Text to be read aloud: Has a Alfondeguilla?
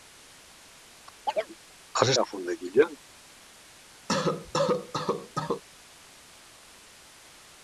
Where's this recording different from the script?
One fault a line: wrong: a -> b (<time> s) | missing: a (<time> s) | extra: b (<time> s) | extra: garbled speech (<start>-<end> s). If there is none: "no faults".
no faults